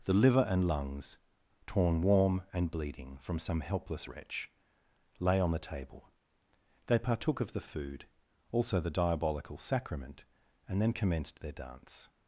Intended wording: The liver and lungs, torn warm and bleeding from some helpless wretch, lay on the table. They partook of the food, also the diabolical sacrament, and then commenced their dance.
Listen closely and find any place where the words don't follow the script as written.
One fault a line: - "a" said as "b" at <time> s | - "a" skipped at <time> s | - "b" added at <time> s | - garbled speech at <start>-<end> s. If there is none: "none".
none